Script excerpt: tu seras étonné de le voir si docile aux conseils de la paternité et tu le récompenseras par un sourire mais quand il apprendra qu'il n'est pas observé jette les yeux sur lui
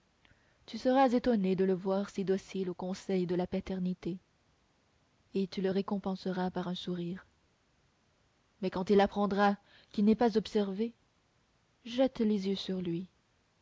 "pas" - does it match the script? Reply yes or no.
yes